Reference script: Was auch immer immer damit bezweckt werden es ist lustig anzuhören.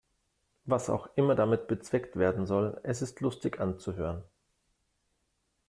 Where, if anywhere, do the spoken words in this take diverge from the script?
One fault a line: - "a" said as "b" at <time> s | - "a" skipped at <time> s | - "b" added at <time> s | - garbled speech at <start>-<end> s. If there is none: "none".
- "immer" skipped at 1.4 s
- "soll" added at 2.5 s